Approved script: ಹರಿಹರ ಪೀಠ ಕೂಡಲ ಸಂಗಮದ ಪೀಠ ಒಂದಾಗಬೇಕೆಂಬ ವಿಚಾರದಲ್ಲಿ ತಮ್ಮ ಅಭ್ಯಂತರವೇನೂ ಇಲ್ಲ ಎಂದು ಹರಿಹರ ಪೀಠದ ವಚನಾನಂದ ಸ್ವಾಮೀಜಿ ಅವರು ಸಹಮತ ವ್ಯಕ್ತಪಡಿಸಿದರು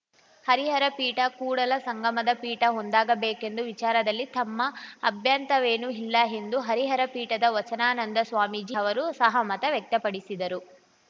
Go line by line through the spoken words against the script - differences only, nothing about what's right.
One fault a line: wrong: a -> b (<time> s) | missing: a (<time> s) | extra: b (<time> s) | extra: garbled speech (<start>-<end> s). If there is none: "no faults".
no faults